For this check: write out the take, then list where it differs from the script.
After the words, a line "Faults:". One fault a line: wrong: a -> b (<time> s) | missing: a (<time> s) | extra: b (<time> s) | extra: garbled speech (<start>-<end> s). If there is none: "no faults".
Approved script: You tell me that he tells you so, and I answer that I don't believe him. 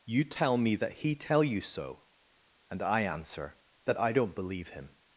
You tell me that he tell you so, and I answer that I don't believe him.
Faults:
wrong: tells -> tell (1.1 s)